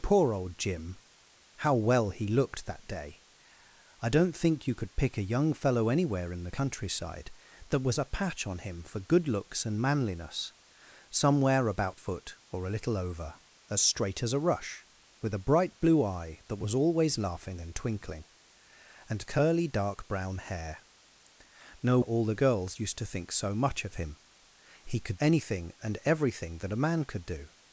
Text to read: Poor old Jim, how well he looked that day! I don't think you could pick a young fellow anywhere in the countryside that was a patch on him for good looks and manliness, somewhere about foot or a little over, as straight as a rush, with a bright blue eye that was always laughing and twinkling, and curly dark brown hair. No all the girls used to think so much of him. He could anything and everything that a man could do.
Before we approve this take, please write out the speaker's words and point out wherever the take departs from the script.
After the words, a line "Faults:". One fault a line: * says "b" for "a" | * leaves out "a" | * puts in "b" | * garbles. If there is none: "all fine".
Poor old Jim, how well he looked that day! I don't think you could pick a young fellow anywhere in the countryside that was a patch on him for good looks and manliness, somewhere about foot or a little over, as straight as a rush, with a bright blue eye that was always laughing and twinkling, and curly dark brown hair. No all the girls used to think so much of him. He could anything and everything that a man could do.
Faults:
all fine